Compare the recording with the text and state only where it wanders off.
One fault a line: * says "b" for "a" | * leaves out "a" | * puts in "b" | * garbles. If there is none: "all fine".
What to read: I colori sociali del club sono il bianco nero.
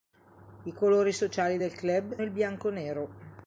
* leaves out "sono"